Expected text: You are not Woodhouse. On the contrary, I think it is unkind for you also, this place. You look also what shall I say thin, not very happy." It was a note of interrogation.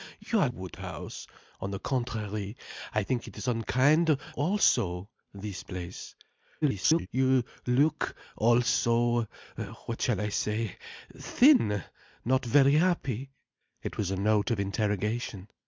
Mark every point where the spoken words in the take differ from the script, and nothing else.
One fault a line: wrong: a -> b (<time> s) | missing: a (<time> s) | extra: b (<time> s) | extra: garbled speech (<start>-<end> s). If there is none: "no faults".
missing: not (0.5 s)
missing: for you (4.2 s)
extra: garbled speech (6.6-7.1 s)